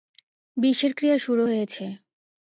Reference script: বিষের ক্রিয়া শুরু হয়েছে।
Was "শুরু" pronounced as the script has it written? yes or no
yes